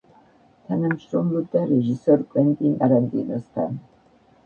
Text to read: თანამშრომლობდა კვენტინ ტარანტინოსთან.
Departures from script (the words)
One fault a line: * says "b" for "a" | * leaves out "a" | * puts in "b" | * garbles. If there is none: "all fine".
* puts in "რეჟისორ"